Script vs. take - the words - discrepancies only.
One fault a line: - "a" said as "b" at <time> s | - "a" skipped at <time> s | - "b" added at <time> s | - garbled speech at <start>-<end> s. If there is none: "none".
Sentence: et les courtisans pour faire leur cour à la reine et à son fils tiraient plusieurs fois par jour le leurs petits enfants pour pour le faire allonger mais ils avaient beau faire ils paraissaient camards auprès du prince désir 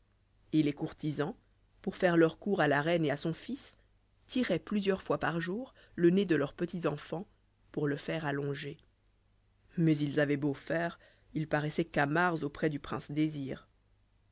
- "nez de" added at 6.1 s
- "pour" skipped at 7.9 s